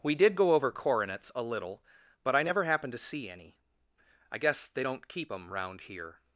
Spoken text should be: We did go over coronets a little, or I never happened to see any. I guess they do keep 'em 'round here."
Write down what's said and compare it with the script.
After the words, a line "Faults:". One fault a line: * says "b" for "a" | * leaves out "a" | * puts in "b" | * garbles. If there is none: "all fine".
We did go over coronets a little, but I never happened to see any. I guess they don't keep 'em 'round here."
Faults:
* says "but" for "or"
* says "don't" for "do"